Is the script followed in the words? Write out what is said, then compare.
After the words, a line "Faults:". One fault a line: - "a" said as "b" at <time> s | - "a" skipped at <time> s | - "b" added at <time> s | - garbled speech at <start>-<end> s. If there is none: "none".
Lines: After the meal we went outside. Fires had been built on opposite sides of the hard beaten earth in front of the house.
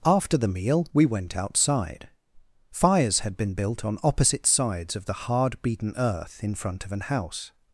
After the meal we went outside. Fires had been built on opposite sides of the hard beaten earth in front of an house.
Faults:
- "the" said as "an" at 6.9 s